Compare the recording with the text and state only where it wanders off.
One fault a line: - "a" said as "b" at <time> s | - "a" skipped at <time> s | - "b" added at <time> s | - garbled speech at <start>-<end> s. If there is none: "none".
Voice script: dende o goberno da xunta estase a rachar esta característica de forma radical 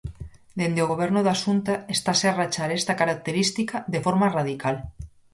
none